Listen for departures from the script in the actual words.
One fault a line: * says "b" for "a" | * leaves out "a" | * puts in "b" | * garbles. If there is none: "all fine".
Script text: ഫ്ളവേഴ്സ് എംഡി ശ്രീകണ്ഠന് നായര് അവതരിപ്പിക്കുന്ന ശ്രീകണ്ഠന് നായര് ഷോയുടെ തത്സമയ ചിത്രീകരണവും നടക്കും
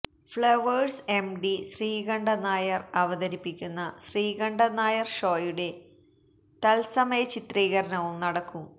all fine